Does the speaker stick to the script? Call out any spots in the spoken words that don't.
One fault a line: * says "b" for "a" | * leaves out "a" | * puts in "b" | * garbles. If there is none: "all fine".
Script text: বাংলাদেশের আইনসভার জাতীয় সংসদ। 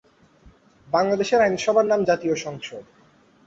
* puts in "নাম"